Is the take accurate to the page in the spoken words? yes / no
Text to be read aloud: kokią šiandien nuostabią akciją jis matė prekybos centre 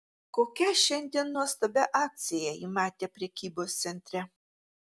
no